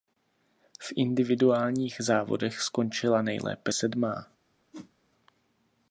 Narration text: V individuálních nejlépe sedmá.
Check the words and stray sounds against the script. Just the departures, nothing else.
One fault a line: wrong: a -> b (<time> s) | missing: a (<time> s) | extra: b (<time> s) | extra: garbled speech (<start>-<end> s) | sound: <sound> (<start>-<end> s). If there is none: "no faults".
extra: závodech skončila (2.0 s)
sound: whoosh (4.7-4.9 s)